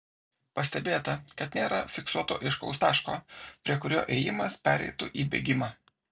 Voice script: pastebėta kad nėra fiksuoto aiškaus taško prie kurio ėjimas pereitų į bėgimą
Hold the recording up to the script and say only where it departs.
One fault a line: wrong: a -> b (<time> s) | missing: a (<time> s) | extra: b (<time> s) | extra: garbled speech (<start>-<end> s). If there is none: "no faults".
no faults